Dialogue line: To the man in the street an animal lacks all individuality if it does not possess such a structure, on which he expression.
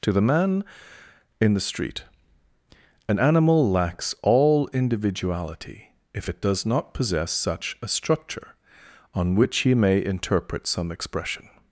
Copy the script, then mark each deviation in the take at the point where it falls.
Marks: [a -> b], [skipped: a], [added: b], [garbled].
To the man in the street an animal lacks all individuality if it does not possess such a structure, on which he [added: may interpret some] expression.